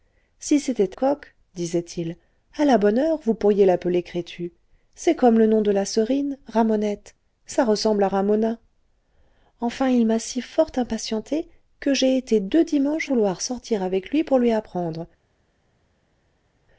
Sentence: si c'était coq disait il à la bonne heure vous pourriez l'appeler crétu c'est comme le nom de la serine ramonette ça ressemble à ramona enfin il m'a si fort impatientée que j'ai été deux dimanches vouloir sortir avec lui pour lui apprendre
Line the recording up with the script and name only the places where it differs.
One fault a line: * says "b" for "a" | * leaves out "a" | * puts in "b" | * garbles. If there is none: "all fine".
all fine